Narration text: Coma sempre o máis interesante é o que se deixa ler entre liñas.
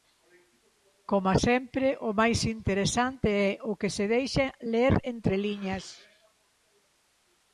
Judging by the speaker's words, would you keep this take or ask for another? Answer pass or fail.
pass